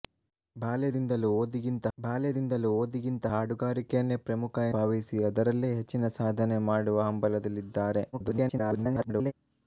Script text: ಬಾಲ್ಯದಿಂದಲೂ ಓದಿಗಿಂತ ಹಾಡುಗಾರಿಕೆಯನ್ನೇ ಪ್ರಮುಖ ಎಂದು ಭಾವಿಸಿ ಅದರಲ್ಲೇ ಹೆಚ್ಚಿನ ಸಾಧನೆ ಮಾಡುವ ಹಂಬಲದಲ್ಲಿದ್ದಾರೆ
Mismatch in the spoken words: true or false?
true